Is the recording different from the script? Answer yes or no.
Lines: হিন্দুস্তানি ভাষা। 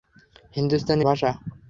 no